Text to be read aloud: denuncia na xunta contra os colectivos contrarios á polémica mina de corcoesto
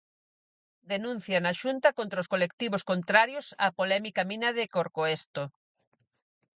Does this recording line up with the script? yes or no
yes